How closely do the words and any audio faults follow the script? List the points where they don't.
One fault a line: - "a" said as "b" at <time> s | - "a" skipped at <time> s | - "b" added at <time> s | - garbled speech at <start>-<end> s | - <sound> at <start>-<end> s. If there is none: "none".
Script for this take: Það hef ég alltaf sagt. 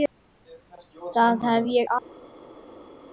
none